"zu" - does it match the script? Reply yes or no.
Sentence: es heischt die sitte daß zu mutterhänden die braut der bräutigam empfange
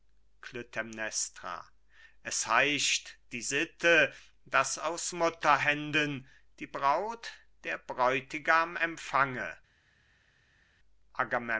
no